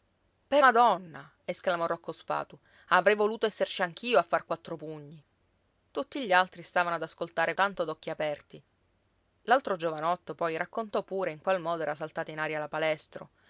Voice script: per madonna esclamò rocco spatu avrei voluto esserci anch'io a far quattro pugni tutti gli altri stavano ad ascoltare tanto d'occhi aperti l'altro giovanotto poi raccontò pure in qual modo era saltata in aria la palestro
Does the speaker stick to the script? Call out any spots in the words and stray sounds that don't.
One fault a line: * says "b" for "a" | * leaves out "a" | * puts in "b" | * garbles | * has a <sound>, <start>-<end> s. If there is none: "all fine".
all fine